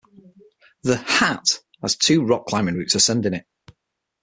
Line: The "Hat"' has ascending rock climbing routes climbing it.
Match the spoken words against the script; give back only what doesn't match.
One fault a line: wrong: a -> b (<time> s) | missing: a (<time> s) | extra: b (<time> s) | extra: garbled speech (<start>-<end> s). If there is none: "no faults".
wrong: ascending -> two (1.9 s)
wrong: climbing -> ascending (2.9 s)